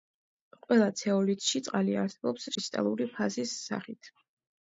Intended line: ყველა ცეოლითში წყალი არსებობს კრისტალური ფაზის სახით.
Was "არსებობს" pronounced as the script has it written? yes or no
yes